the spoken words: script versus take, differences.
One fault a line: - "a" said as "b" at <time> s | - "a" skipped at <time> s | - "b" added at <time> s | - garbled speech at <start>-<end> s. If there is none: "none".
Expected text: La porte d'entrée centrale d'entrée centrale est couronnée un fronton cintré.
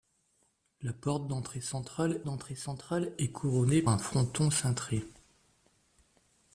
none